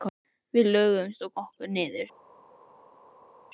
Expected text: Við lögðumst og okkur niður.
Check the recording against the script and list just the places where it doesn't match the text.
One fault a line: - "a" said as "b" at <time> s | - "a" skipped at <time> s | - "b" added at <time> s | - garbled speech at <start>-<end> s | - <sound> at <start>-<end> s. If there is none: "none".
none